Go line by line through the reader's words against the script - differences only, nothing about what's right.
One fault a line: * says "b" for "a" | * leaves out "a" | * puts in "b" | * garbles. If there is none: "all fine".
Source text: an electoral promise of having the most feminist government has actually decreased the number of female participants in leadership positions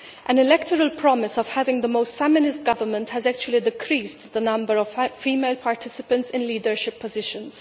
all fine